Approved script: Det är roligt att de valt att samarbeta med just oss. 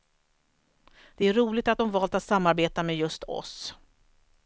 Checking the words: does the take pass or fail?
pass